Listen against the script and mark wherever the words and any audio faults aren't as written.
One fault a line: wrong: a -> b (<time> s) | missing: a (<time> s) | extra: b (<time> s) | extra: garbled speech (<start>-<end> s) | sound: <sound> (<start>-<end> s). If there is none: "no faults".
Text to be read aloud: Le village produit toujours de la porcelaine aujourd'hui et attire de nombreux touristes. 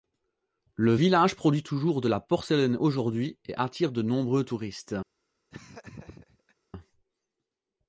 sound: laugh (5.5-6.6 s)